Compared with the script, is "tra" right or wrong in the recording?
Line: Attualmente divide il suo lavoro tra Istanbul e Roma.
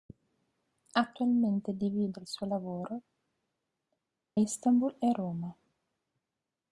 wrong